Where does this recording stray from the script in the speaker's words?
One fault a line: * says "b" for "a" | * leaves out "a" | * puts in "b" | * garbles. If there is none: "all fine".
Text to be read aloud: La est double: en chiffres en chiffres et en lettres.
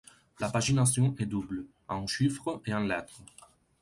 * puts in "pagination"
* leaves out "en chiffres"